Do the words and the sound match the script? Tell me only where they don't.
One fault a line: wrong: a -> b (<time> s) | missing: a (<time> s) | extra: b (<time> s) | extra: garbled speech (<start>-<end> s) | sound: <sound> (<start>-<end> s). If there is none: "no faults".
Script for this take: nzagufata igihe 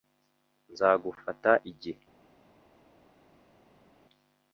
no faults